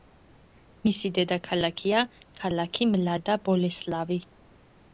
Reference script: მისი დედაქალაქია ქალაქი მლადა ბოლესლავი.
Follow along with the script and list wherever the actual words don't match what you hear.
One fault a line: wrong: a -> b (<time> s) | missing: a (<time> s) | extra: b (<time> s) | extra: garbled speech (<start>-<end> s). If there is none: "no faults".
no faults